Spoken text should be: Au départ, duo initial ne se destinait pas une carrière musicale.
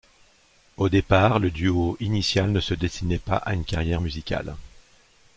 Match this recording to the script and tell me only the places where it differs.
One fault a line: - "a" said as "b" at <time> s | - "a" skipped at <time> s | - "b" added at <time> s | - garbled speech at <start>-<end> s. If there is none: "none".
- "le" added at 1.4 s
- "à" added at 3.4 s